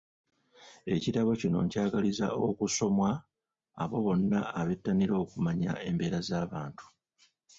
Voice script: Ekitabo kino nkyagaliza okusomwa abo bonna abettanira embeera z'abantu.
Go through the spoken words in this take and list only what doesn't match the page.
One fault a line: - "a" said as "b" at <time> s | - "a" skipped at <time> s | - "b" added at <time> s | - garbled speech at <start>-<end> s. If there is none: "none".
- "okumanya" added at 5.2 s